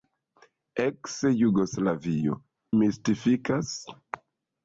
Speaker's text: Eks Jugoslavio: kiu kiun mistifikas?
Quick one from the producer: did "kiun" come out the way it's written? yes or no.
no